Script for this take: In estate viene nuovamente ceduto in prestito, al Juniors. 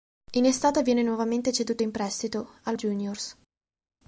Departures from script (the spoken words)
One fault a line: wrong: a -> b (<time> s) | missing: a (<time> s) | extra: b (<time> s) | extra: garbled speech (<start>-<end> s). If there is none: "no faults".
no faults